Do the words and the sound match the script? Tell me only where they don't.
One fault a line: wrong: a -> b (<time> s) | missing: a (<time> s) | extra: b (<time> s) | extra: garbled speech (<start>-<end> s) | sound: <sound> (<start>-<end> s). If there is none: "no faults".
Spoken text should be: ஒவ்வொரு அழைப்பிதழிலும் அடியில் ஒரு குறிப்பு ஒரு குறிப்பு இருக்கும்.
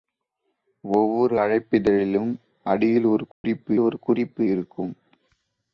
sound: dropout (3.3-3.4 s)